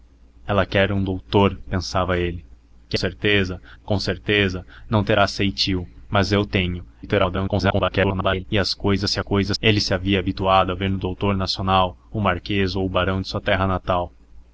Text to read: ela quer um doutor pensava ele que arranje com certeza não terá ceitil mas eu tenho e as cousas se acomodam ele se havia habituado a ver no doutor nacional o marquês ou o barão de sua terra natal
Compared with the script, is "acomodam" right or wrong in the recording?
wrong